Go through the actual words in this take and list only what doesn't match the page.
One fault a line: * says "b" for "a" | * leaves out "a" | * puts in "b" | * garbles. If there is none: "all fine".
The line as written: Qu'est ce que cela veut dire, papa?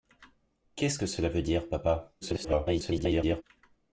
* garbles